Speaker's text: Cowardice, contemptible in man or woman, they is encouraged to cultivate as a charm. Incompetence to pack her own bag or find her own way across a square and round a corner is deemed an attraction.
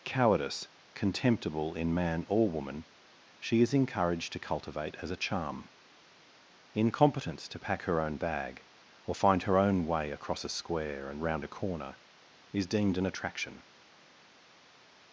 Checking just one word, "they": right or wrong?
wrong